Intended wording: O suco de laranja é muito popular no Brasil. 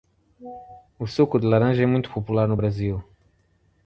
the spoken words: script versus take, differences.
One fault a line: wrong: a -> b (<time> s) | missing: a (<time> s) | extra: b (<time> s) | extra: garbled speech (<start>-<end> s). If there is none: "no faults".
no faults